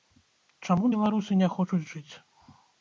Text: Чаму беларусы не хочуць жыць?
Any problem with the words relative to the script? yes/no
no